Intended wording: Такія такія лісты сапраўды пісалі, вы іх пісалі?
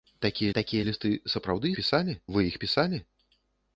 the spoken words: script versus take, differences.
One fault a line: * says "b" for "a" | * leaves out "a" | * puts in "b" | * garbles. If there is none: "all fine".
all fine